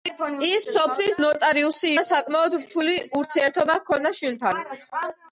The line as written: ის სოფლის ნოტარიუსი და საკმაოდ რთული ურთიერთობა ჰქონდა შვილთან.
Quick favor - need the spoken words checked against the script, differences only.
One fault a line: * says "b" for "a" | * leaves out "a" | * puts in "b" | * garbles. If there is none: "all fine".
all fine